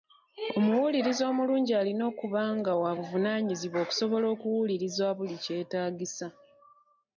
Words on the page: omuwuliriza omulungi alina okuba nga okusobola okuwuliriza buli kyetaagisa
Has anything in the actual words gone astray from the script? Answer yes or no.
yes